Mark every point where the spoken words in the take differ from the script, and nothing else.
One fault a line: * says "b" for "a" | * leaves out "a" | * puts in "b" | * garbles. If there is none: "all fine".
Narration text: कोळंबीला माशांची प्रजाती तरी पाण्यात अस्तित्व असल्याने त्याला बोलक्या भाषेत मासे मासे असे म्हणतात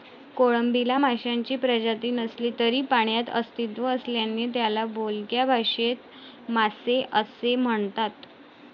* puts in "नसली"
* leaves out "मासे"